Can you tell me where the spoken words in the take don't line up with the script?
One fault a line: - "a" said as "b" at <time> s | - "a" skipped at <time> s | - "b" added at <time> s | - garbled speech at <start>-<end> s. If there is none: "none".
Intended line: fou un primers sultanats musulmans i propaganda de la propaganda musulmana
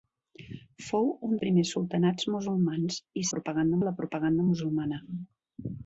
none